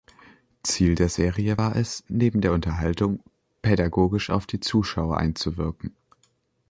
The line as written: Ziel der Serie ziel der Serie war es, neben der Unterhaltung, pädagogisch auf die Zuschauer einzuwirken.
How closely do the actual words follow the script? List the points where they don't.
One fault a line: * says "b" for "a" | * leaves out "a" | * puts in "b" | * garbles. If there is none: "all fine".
* leaves out "ziel der Serie"